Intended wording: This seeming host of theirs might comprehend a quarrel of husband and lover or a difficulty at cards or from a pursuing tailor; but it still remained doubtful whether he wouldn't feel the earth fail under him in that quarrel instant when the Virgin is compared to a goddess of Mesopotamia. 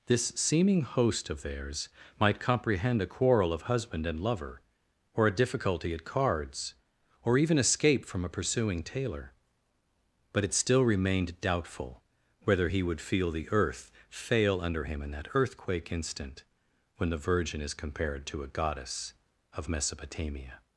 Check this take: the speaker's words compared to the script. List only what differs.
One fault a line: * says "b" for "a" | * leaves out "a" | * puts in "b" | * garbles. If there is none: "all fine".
* puts in "even escape"
* says "would" for "wouldn't"
* says "earthquake" for "quarrel"